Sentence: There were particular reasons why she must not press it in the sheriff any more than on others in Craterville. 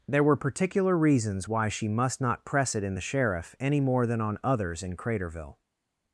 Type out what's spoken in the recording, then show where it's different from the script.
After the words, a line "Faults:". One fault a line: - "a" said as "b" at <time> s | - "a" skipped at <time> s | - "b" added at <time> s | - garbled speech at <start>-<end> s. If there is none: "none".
There were particular reasons why she must not press it in the sheriff any more than on others in Craterville.
Faults:
none